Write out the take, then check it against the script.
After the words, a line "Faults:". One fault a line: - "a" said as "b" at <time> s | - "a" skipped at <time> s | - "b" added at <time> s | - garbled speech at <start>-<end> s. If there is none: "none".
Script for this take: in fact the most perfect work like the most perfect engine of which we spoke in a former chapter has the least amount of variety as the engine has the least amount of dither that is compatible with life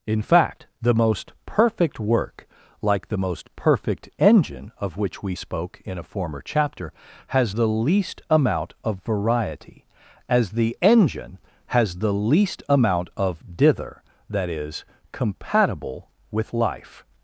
in fact the most perfect work like the most perfect engine of which we spoke in a former chapter has the least amount of variety as the engine has the least amount of dither that is compatible with life
Faults:
none